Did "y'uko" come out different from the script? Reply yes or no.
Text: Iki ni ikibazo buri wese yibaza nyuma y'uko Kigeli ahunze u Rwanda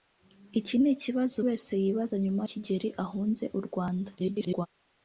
yes